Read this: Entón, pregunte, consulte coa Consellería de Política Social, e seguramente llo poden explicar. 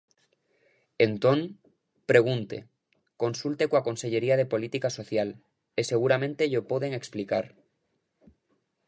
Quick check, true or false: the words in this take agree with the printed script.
true